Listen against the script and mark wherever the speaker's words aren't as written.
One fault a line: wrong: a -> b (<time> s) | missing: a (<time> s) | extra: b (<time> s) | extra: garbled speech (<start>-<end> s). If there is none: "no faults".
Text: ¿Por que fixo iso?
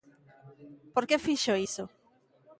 no faults